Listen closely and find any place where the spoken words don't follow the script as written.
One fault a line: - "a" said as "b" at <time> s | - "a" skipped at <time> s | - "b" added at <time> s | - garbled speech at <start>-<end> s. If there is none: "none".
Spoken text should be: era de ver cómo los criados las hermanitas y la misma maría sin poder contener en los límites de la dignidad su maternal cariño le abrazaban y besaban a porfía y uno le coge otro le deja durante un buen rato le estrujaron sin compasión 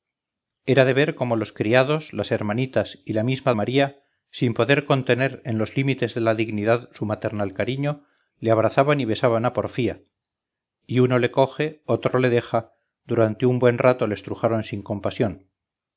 none